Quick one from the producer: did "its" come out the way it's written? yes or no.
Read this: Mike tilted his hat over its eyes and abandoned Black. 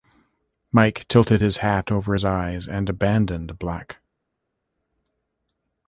no